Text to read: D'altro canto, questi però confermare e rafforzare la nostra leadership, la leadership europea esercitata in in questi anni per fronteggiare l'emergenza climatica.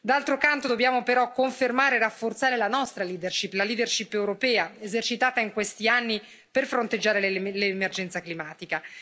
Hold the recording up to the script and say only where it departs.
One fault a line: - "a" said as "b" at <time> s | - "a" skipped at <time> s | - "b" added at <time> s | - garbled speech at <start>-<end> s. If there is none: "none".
- "questi" said as "dobbiamo" at 0.6 s
- "in" skipped at 5.5 s